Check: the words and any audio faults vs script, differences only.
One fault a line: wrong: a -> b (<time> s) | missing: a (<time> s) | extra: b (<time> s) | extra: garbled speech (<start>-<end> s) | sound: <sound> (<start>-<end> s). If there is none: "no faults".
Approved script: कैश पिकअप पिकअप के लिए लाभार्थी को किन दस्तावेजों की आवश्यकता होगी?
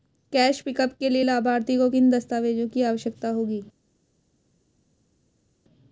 missing: पिकअप (0.9 s)